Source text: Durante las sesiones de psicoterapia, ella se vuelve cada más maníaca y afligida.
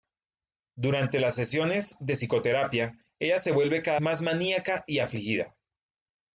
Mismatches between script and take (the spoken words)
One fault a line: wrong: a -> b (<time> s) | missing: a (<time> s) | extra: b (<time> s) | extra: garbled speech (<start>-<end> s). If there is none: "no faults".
no faults